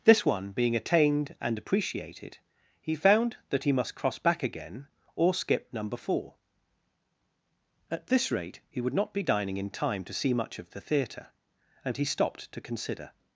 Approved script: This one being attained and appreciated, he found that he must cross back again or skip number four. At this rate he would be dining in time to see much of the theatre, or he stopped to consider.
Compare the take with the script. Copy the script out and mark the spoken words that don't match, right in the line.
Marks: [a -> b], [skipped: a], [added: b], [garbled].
This one being attained and appreciated, he found that he must cross back again or skip number four. At this rate he would [added: not] be dining in time to see much of the theatre, [or -> and] he stopped to consider.